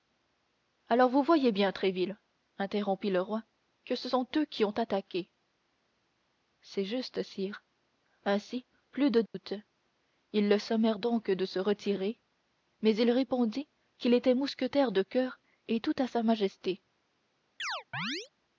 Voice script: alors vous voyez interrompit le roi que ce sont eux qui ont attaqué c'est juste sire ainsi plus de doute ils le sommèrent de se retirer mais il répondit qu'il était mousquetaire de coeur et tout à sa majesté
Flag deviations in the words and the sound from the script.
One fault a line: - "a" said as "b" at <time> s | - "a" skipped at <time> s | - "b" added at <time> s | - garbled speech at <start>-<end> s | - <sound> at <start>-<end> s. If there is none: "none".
- "bien tréville" added at 1.5 s
- dropout at 9.3-9.3 s
- "donc" added at 11.0 s
- chirp at 17.6-18.3 s